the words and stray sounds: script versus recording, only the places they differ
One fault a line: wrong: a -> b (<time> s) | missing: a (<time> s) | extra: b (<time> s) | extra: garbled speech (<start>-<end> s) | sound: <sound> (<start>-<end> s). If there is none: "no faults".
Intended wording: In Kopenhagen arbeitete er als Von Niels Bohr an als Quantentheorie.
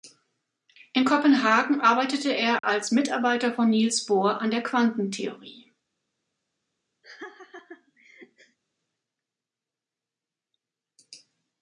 sound: dropout (2.6-2.6 s)
extra: Mitarbeiter (2.9 s)
wrong: als -> der (4.5 s)
sound: laugh (7.0-8.6 s)